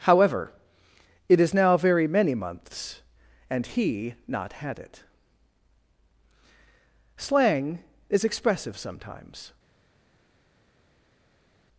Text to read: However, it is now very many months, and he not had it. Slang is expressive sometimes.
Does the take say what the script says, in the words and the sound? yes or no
yes